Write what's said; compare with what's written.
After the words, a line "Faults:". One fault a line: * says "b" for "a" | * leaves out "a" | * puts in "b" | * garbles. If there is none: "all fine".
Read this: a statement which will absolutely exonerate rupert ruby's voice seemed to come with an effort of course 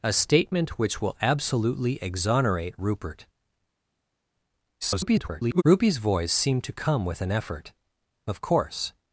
a statement which will absolutely exonerate rupert [garbled] ruby's voice seemed to come with an effort of course
Faults:
* garbles